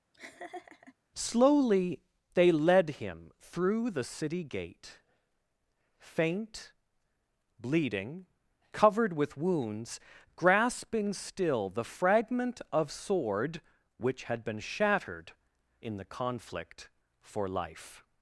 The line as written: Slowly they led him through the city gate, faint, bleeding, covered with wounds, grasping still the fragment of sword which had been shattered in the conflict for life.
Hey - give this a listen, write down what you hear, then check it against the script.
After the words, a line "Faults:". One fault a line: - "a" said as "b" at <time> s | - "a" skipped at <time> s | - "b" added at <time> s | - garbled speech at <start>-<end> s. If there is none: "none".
Slowly they led him through the city gate, faint, bleeding, covered with wounds, grasping still the fragment of sword which had been shattered in the conflict for life.
Faults:
none